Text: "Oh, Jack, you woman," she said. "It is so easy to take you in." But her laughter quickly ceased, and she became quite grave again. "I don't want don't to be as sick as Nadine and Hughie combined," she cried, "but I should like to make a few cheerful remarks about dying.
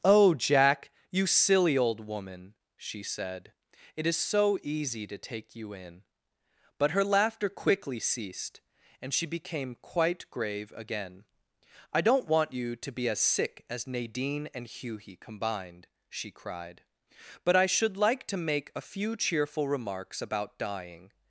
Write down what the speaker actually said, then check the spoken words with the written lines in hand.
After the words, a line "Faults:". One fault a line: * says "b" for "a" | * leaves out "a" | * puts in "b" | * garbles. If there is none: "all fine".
"Oh, Jack, you silly old woman," she said. "It is so easy to take you in." But her laughter quickly ceased, and she became quite grave again. "I don't want you to be as sick as Nadine and Hughie combined," she cried, "but I should like to make a few cheerful remarks about dying.
Faults:
* puts in "silly old"
* says "you" for "don't"